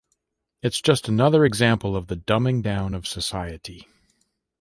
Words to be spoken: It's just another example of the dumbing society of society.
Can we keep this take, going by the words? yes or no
no